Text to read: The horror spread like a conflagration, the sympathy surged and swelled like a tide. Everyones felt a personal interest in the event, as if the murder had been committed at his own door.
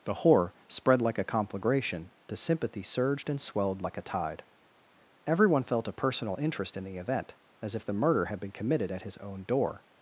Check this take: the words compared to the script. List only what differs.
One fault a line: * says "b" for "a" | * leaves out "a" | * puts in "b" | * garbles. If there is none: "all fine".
* says "Everyone" for "Everyones"